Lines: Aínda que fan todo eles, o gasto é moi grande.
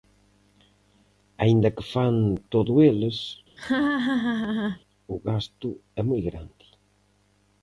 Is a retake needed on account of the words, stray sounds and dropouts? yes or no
yes